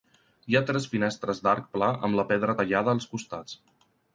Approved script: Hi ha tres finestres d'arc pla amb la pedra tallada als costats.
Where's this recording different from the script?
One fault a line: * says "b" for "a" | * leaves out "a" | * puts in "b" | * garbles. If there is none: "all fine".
all fine